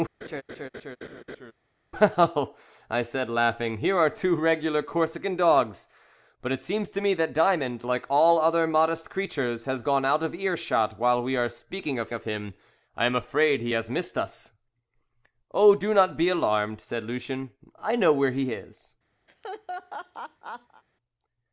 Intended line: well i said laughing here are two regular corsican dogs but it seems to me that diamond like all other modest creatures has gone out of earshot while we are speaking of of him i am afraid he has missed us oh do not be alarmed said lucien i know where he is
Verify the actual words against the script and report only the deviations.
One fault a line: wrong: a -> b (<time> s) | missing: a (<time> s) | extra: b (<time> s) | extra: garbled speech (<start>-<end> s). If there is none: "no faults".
no faults